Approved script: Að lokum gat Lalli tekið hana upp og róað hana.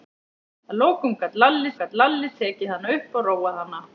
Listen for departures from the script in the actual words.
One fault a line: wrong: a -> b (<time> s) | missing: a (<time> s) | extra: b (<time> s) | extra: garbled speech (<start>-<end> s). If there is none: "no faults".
extra: gat Lalli (1.8 s)